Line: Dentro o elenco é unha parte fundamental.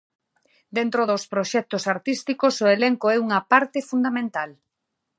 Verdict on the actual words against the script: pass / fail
fail